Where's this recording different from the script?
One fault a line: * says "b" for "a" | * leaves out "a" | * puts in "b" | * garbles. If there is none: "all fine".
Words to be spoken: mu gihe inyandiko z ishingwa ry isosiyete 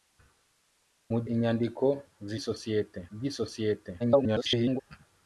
* leaves out "gihe"
* says "isosiyete" for "ishingwa"
* garbles